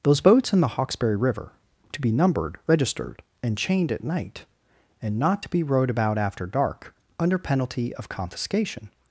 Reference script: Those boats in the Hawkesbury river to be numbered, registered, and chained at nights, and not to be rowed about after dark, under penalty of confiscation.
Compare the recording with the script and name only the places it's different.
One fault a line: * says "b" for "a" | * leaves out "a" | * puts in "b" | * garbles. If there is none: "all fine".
* says "night" for "nights"